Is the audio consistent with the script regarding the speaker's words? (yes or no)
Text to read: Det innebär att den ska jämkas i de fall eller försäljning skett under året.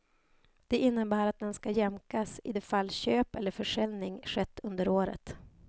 no